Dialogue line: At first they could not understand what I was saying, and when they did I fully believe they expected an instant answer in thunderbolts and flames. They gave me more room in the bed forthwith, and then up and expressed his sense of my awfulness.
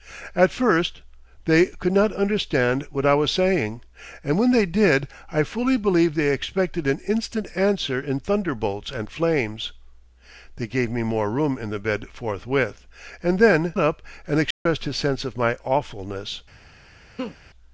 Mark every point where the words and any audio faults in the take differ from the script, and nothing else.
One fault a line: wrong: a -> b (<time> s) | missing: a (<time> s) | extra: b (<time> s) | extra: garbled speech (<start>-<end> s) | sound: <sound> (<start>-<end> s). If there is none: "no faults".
sound: dropout (14.5-14.7 s)
sound: laugh (17.2-17.4 s)